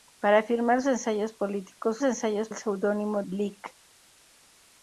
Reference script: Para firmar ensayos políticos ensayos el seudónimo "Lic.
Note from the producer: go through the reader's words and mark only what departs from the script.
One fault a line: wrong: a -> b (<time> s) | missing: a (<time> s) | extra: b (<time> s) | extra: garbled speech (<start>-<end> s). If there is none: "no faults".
no faults